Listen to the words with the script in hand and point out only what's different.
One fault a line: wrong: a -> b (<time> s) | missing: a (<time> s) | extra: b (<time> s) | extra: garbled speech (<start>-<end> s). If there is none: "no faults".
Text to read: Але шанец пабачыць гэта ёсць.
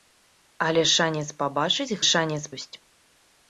wrong: гэта -> шанец (2.1 s)